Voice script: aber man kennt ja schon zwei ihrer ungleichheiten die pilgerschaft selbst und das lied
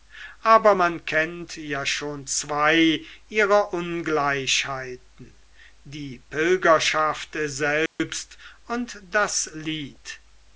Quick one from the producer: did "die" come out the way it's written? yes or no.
yes